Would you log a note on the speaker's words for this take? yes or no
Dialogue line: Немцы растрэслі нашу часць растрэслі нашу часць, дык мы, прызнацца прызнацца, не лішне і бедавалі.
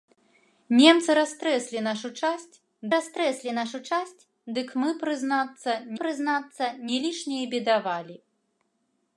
no